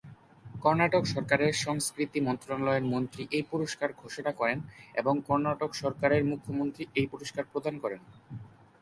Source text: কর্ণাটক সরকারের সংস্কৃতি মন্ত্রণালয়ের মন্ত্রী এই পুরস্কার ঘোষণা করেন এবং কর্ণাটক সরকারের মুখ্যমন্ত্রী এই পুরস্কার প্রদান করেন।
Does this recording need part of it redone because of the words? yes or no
no